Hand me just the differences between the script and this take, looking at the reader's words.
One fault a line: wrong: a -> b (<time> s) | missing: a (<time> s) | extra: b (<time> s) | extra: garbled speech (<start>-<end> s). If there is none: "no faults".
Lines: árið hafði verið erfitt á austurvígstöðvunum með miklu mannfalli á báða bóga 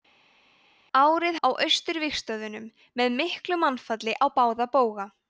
missing: hafði verið erfitt (1.4 s)